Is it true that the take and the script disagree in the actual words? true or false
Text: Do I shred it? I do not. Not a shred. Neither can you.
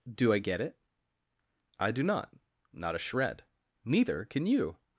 true